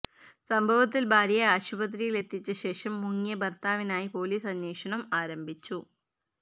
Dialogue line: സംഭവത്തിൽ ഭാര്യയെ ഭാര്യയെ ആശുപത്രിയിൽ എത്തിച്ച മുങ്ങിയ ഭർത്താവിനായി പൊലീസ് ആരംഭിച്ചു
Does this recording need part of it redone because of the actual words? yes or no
yes